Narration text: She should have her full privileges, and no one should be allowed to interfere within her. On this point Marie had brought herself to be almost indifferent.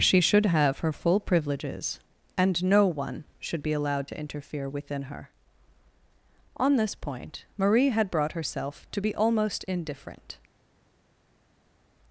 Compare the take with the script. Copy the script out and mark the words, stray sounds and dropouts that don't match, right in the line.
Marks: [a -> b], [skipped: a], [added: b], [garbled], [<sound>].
She should have her full privileges, and no one should be allowed to interfere within her. On this point Marie had brought herself to be almost indifferent.